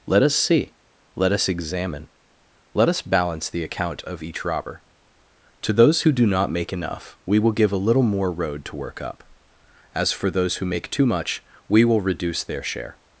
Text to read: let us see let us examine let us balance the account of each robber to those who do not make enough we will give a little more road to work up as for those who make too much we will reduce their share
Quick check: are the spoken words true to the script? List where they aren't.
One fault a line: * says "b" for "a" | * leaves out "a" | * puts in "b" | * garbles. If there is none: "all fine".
all fine